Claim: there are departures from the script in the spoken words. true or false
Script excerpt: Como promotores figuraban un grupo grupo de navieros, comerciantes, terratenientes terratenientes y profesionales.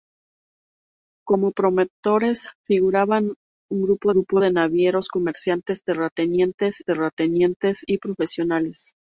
false